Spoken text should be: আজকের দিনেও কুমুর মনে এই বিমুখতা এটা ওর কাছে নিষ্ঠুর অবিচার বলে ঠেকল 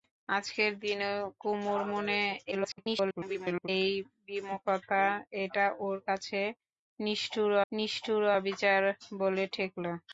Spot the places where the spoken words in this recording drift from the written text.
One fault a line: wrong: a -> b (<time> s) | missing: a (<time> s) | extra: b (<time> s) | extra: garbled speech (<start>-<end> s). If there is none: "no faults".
extra: garbled speech (2.5-3.7 s)
extra: নিষ্ঠুর (7.7 s)